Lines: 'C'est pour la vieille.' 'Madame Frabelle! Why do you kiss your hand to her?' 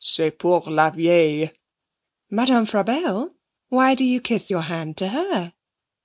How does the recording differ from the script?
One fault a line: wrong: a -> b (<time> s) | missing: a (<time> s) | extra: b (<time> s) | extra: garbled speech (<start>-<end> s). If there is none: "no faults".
no faults